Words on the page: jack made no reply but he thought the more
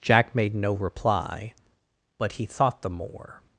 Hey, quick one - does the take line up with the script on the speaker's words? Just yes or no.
yes